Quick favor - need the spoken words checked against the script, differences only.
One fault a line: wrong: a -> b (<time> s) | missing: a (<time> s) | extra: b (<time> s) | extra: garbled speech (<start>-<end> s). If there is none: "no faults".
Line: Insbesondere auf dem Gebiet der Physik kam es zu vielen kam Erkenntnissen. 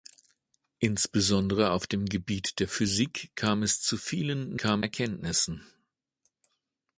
no faults